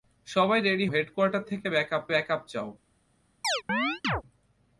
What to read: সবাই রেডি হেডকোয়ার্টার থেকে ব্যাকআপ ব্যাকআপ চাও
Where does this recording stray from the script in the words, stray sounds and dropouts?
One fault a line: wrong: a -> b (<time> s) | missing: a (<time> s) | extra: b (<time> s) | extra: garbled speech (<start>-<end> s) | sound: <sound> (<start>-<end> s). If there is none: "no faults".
sound: chirp (3.4-4.2 s)